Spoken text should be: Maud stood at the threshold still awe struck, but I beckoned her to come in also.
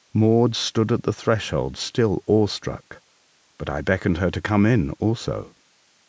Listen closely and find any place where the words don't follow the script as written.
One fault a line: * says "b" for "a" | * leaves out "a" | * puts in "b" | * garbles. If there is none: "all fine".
all fine